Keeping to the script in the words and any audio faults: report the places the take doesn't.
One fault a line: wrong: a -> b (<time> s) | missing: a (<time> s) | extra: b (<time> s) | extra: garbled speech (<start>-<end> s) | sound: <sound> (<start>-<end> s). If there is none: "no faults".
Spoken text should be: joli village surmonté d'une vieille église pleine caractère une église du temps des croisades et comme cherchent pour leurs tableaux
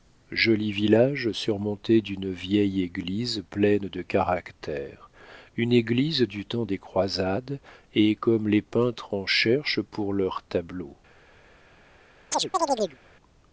extra: de (3.9 s)
extra: les peintres en (8.5 s)
sound: chirp (12.3-13.0 s)